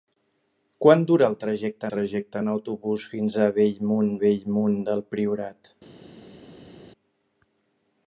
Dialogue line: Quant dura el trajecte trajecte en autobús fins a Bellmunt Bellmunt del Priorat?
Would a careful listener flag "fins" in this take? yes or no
no